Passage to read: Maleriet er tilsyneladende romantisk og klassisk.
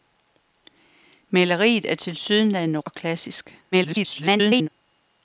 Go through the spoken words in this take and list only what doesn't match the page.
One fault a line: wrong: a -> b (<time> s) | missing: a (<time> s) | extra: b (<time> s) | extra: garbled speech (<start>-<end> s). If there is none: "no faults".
missing: romantisk (2.8 s)
extra: garbled speech (3.7-4.7 s)